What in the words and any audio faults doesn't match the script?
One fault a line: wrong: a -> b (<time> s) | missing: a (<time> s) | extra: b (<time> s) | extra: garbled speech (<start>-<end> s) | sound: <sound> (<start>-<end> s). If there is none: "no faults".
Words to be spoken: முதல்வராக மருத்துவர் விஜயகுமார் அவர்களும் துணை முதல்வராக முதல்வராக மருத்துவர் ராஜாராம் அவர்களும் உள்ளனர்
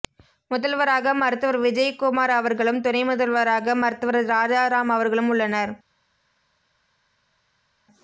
missing: முதல்வராக (3.8 s)